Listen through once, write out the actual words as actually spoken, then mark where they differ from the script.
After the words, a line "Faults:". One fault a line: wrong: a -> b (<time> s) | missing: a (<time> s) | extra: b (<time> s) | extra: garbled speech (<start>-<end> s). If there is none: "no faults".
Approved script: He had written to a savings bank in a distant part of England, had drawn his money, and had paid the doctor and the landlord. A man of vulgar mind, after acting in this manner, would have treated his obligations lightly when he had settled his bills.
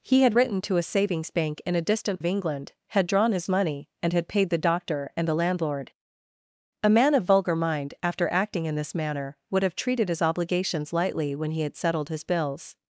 He had written to a savings bank in a distant of England, had drawn his money, and had paid the doctor and the landlord. A man of vulgar mind, after acting in this manner, would have treated his obligations lightly when he had settled his bills.
Faults:
missing: part (2.2 s)